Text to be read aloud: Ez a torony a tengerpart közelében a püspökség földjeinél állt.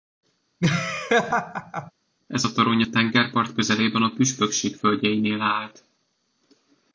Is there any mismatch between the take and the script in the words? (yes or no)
no